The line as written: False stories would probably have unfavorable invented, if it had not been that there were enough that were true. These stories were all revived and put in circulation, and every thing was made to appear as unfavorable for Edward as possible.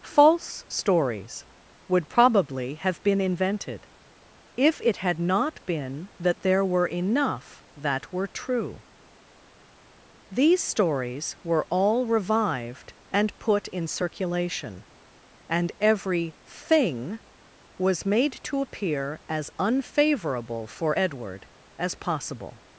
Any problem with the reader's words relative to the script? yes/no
yes